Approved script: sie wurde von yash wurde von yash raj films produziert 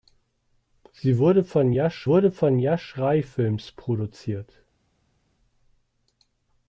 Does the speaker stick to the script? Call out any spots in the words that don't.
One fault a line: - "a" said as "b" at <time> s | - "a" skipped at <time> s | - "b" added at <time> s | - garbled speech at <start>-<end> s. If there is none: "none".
none